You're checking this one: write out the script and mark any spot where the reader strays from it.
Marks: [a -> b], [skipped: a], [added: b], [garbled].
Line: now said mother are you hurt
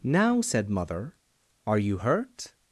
now said mother are you hurt